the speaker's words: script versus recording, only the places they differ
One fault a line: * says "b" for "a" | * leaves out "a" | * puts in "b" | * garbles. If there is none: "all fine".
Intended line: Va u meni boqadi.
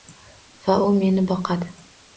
all fine